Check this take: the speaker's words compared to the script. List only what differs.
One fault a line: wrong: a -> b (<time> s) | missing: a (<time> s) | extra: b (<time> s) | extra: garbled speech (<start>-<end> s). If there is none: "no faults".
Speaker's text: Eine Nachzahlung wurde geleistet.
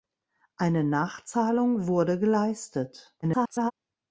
extra: garbled speech (3.2-3.7 s)